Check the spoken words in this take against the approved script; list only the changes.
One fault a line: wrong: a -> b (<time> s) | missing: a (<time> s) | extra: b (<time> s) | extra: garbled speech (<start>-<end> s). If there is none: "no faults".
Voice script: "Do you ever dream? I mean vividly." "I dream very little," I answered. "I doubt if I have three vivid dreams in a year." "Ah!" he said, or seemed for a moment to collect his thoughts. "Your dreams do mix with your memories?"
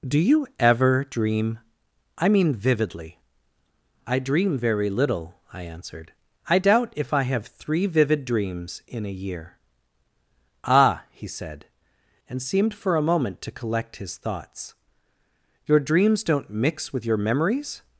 wrong: or -> and (12.3 s)
wrong: do -> don't (16.2 s)